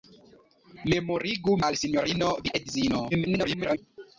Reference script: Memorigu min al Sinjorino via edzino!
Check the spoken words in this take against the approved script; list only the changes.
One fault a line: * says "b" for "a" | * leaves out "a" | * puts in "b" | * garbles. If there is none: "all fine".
* leaves out "min"
* garbles